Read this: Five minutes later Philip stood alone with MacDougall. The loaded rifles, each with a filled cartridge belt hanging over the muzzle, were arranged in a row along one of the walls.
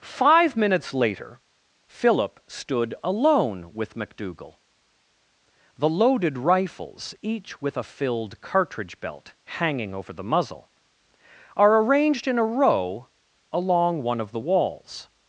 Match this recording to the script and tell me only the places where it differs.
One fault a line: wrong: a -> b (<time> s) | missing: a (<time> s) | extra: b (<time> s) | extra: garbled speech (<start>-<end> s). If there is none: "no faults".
wrong: were -> are (11.6 s)